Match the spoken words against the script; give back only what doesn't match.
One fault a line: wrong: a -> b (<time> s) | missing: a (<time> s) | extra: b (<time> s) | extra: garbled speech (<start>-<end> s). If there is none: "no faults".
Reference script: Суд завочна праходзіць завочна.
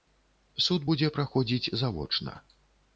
wrong: завочна -> будзе (0.9 s)